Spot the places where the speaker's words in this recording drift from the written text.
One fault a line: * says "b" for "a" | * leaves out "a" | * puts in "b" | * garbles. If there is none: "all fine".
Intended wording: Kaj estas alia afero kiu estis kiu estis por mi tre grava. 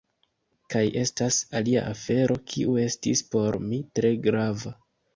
* leaves out "kiu estis"